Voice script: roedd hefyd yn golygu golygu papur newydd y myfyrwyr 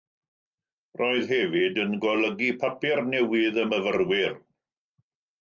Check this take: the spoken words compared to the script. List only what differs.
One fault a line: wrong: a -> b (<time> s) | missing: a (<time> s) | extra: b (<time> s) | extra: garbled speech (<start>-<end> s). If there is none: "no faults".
missing: golygu (2.5 s)